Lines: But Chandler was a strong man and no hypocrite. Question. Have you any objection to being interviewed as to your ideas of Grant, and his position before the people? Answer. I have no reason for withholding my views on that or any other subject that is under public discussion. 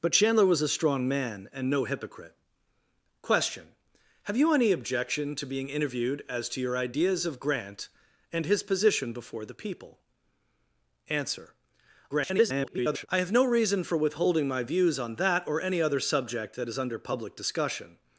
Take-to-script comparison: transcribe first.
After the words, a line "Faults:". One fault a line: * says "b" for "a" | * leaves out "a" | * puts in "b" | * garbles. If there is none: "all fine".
But Chandler was a strong man and no hypocrite. Question. Have you any objection to being interviewed as to your ideas of Grant, and his position before the people? Answer. [garbled] I have no reason for withholding my views on that or any other subject that is under public discussion.
Faults:
* garbles